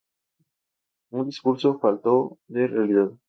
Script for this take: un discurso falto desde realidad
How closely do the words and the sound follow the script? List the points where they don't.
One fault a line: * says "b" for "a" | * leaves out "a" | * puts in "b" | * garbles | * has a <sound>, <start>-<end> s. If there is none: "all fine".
* says "de" for "desde"